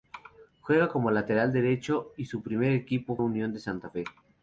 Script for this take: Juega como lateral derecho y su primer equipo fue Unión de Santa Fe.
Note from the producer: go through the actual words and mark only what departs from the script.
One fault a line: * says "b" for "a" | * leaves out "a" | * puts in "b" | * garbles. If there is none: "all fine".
* leaves out "fue"